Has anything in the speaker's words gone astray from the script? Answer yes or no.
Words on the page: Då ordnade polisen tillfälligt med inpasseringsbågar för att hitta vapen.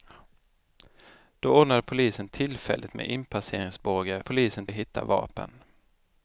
yes